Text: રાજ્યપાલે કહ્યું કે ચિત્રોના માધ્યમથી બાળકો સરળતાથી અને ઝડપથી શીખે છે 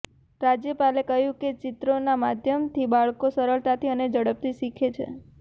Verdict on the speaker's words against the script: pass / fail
pass